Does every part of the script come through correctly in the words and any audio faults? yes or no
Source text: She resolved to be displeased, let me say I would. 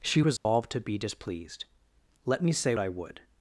no